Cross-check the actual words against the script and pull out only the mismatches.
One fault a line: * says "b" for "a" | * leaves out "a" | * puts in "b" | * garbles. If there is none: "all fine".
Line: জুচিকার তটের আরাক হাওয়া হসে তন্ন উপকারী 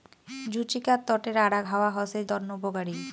all fine